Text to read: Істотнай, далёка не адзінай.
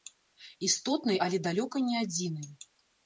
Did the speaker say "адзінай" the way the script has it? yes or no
yes